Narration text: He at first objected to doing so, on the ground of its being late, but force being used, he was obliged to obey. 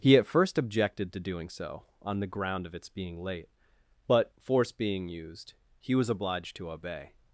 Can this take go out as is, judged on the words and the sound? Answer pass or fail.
pass